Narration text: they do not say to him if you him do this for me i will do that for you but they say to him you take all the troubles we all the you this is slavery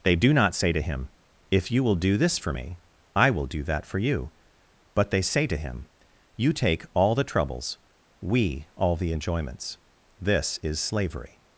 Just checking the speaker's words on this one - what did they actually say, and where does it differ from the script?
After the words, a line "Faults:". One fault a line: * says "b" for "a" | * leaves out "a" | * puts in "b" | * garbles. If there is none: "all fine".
they do not say to him if you will do this for me i will do that for you but they say to him you take all the troubles we all the enjoyments this is slavery
Faults:
* says "will" for "him"
* says "enjoyments" for "you"